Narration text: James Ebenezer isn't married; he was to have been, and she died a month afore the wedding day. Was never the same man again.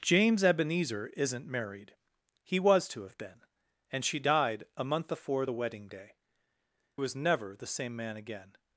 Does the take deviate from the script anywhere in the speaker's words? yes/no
no